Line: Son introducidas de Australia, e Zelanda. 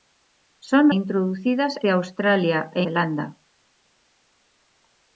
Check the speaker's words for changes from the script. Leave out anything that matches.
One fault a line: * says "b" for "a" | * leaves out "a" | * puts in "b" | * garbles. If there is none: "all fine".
all fine